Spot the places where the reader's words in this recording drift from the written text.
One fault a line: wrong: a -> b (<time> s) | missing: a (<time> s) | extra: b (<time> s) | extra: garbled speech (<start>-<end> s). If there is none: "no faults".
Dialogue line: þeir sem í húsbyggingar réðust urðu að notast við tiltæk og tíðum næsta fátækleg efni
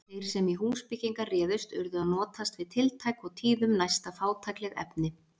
no faults